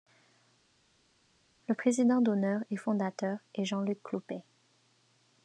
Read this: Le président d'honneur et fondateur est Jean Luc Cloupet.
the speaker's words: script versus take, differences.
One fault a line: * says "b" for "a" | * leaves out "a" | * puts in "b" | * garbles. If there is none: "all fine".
all fine